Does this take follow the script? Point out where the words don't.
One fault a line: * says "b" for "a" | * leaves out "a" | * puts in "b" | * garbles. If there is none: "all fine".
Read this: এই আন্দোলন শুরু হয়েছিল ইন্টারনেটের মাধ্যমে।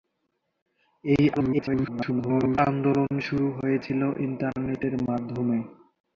* garbles